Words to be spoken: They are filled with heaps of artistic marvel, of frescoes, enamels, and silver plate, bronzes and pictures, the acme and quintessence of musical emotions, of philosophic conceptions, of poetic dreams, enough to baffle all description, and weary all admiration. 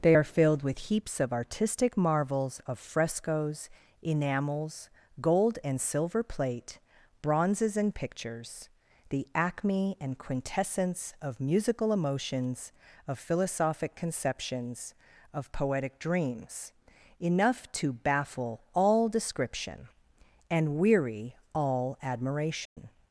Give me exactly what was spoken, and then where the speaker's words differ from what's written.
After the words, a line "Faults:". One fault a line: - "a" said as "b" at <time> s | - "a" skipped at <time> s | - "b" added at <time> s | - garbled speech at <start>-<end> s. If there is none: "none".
They are filled with heaps of artistic marvels, of frescoes, enamels, gold and silver plate, bronzes and pictures, the acme and quintessence of musical emotions, of philosophic conceptions, of poetic dreams, enough to baffle all description, and weary all admiration.
Faults:
- "marvel" said as "marvels" at 2.0 s
- "gold" added at 5.2 s